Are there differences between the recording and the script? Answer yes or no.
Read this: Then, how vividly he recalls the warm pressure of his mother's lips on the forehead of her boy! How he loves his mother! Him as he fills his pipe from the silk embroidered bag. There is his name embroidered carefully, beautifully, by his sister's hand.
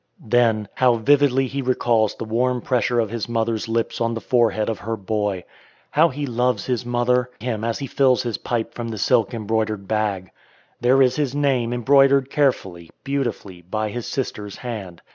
no